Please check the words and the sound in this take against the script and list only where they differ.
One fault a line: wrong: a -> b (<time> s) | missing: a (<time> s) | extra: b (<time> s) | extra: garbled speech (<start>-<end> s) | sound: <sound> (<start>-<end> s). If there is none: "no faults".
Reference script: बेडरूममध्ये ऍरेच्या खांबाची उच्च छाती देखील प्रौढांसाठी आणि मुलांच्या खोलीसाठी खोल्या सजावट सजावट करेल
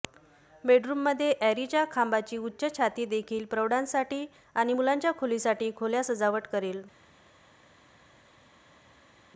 missing: सजावट (6.5 s)